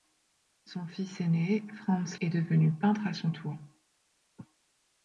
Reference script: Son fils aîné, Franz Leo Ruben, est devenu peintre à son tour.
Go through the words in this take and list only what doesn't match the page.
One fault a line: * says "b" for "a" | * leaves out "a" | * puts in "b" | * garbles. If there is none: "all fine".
* leaves out "Leo Ruben"